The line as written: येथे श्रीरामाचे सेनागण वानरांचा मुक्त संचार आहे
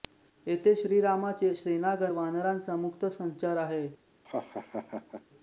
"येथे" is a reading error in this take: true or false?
false